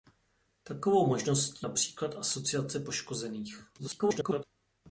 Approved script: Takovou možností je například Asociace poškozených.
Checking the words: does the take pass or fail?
fail